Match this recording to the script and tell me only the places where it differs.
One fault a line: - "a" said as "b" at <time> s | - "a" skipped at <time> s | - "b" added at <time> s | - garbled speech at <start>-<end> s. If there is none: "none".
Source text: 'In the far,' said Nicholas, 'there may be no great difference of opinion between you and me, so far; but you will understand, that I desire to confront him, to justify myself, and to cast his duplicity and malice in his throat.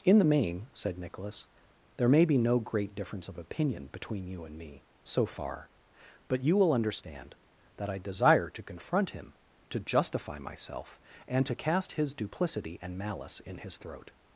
- "far" said as "main" at 0.2 s